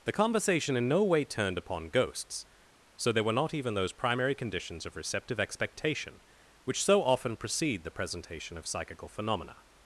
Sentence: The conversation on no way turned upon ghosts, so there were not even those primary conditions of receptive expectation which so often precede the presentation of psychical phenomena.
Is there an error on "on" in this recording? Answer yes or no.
yes